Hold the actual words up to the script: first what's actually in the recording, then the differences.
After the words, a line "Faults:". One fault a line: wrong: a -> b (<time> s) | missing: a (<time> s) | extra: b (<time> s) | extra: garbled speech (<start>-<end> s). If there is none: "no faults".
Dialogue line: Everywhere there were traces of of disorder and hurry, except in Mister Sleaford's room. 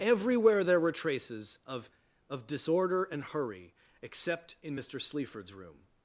Everywhere there were traces of of disorder and hurry, except in Mister Sleaford's room.
Faults:
no faults